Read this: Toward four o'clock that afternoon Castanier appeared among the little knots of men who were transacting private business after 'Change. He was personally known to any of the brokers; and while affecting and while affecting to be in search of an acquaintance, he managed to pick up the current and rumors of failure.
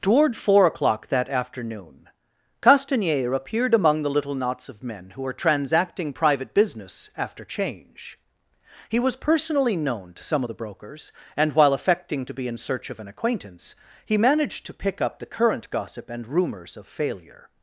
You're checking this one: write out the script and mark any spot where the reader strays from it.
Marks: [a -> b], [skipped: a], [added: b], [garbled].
Toward four o'clock that afternoon Castanier appeared among the little knots of men who were transacting private business after 'Change. He was personally known to [any -> some] of the brokers; and while affecting [skipped: and while affecting] to be in search of an acquaintance, he managed to pick up the current [added: gossip] and rumors of failure.